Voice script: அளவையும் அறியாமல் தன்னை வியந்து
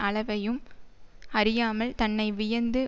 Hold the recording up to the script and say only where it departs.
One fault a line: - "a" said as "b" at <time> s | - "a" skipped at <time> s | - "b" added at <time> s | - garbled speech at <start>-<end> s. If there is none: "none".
none